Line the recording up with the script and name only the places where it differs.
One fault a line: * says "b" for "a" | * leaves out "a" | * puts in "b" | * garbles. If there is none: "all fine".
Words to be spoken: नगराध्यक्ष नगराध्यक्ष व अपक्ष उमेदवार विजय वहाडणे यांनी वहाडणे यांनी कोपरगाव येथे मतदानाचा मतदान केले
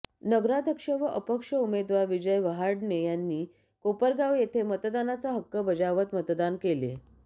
* leaves out "नगराध्यक्ष"
* leaves out "वहाडणे यांनी"
* puts in "हक्क बजावत"